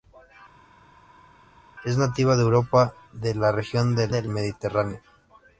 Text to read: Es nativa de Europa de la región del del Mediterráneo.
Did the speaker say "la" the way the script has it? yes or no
yes